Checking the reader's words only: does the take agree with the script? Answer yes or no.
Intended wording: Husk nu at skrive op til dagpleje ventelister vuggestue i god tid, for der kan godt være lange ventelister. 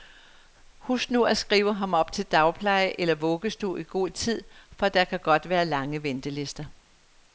no